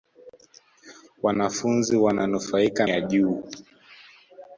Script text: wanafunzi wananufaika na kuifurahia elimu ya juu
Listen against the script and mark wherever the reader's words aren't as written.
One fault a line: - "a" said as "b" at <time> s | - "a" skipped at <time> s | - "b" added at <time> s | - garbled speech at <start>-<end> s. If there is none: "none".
- "na kuifurahia elimu" skipped at 2.9 s